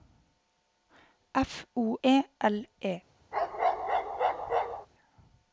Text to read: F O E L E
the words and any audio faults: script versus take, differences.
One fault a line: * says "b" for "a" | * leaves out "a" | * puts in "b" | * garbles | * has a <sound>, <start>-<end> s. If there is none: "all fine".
* has a bark, 3.3-4.9 s